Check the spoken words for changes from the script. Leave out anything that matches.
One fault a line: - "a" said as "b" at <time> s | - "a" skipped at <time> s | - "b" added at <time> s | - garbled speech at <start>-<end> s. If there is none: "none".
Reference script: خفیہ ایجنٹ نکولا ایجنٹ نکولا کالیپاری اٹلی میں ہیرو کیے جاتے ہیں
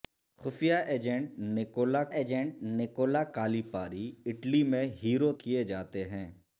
none